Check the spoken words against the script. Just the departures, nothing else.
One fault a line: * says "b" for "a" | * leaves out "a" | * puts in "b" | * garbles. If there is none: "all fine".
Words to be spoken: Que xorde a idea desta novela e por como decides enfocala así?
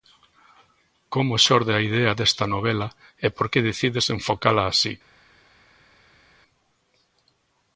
* says "Como" for "Que"
* says "que" for "como"